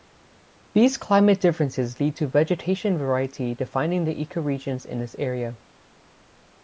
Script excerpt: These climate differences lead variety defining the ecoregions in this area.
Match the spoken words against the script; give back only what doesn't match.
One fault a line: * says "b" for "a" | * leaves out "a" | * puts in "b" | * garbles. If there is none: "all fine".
* puts in "to vegetation"